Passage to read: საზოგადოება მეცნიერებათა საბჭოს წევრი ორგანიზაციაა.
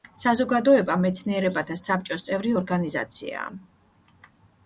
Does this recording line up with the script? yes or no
yes